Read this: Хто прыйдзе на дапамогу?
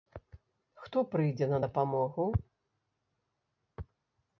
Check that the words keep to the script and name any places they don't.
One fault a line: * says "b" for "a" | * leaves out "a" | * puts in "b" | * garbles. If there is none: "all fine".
all fine